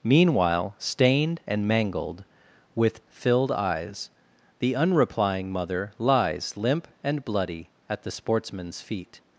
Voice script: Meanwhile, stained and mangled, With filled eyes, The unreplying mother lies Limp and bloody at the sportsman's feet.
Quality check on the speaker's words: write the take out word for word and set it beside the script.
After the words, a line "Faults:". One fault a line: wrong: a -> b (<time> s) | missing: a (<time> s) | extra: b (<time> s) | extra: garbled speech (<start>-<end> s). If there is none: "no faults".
Meanwhile, stained and mangled, With filled eyes, The unreplying mother lies Limp and bloody at the sportsman's feet.
Faults:
no faults